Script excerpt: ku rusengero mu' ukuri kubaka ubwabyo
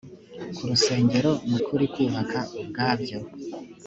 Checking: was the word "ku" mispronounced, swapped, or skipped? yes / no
no